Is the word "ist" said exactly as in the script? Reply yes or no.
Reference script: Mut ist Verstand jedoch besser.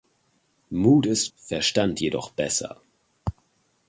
yes